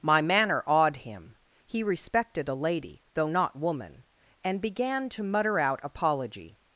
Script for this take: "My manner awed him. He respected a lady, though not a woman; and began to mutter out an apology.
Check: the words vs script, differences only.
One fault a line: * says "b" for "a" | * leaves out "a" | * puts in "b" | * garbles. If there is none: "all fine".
* leaves out "a"
* leaves out "an"